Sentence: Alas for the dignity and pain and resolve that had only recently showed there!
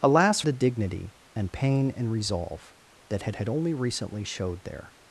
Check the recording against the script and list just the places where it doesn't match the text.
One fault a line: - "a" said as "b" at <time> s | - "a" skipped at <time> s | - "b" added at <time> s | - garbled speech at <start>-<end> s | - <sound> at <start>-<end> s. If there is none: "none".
- "for" skipped at 0.4 s
- "had" added at 3.4 s